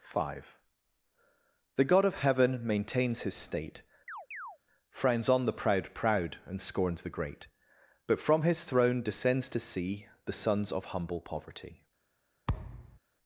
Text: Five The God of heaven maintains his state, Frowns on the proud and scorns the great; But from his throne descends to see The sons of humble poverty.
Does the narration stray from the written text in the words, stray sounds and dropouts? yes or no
yes